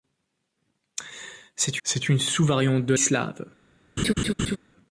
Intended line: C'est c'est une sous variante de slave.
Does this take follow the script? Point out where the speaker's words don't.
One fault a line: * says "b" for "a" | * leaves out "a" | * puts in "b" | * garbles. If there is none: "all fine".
all fine